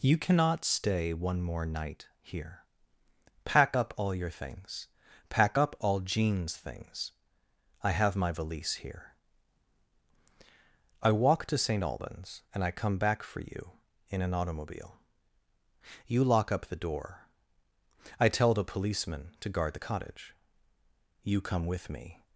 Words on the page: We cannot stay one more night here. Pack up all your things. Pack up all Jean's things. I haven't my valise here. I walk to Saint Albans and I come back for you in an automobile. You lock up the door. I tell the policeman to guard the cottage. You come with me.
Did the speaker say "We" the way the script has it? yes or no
no